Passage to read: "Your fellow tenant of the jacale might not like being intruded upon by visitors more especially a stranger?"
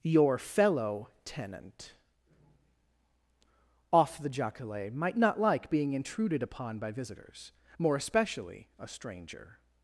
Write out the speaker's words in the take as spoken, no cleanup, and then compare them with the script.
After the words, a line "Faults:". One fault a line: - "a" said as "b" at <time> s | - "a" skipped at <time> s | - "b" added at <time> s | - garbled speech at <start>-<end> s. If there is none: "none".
"Your fellow tenant off the jacale might not like being intruded upon by visitors more especially a stranger?"
Faults:
- "of" said as "off" at 3.9 s